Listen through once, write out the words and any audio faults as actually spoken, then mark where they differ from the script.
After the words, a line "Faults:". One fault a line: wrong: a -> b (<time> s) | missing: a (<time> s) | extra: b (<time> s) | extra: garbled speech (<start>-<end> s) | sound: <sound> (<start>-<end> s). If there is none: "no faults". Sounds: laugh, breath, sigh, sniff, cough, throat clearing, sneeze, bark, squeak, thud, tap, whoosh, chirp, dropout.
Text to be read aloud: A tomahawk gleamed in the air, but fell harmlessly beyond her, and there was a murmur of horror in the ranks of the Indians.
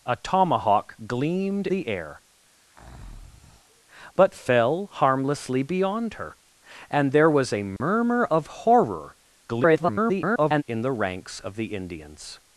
A tomahawk gleamed the air, but fell harmlessly beyond her, and there was a murmur of horror [garbled] in the ranks of the Indians.
Faults:
missing: in (1.7 s)
sound: breath (2.6-3.8 s)
sound: dropout (7.8-7.8 s)
extra: garbled speech (9.5-10.6 s)